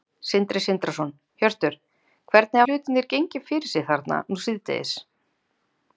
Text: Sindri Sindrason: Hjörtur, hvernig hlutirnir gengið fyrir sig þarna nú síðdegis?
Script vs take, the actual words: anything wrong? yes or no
no